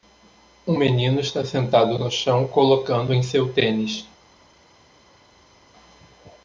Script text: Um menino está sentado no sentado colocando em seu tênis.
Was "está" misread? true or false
false